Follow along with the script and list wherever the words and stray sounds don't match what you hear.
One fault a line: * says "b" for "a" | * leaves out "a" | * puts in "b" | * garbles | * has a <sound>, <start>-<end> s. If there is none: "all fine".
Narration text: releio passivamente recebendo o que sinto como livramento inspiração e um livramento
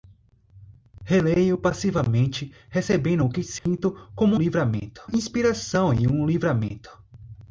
* has a dropout, 3.6-3.7 s